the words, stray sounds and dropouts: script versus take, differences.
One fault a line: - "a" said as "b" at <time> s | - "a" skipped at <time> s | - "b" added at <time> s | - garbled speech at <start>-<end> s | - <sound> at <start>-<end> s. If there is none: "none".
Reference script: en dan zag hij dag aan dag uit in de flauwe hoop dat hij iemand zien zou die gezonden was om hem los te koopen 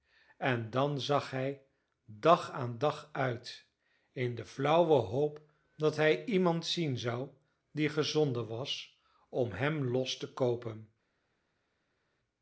none